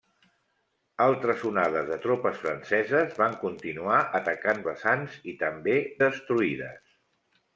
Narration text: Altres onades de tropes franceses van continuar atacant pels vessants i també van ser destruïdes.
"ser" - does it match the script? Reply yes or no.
no